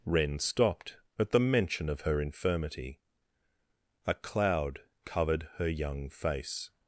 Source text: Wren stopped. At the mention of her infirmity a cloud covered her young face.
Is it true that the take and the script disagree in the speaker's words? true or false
false